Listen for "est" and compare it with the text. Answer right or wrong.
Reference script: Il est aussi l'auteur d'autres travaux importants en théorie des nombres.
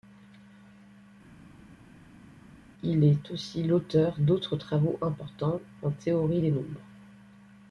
right